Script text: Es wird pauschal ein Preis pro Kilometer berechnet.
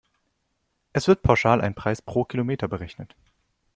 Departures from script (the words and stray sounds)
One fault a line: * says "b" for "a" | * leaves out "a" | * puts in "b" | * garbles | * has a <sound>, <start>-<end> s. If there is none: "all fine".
all fine